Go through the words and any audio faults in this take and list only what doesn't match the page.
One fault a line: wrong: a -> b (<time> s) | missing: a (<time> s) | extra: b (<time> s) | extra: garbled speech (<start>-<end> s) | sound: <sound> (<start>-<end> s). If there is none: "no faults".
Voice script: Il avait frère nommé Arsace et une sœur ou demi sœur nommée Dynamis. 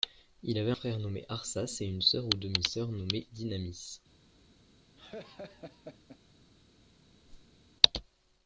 sound: laugh (5.0-6.2 s)
sound: whoosh (7.2-7.6 s)